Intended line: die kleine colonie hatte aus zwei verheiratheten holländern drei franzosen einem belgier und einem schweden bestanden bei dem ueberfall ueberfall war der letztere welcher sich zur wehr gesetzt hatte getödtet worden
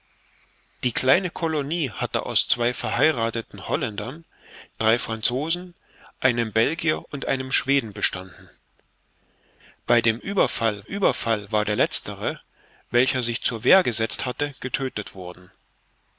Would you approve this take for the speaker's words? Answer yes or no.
yes